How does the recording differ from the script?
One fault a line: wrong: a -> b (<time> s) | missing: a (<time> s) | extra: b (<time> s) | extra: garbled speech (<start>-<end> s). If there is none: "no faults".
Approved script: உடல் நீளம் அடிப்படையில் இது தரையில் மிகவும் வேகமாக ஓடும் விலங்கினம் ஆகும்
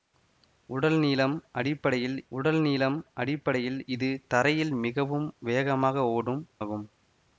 extra: உடல் நீளம் அடிப்படையில் (2.3 s)
missing: விலங்கினம் (6.4 s)